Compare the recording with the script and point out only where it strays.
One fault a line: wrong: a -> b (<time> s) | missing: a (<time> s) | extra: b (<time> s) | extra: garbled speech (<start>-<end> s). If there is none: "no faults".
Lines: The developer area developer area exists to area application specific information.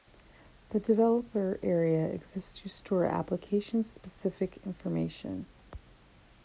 missing: developer area (2.1 s)
wrong: area -> store (2.7 s)